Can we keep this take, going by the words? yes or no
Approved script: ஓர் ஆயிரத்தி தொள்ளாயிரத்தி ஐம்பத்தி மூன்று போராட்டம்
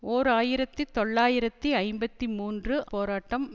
yes